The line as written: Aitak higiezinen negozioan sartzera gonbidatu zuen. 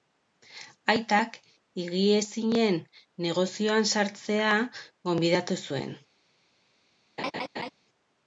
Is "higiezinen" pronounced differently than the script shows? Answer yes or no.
no